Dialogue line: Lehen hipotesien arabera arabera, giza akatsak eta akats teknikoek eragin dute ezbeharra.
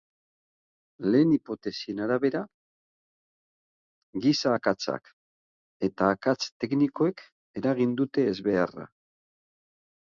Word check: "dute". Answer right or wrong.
right